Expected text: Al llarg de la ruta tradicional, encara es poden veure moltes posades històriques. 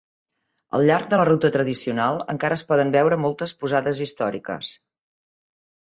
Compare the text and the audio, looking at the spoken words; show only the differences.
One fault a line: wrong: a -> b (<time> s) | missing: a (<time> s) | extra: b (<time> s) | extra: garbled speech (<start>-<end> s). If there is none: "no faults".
no faults